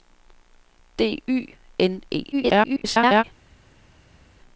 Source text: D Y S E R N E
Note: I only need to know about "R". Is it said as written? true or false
false